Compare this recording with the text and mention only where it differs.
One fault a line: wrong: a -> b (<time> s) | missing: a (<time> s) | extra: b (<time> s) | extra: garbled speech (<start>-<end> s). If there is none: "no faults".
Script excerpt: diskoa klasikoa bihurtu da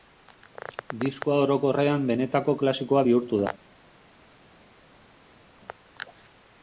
extra: orokorrean benetako (1.4 s)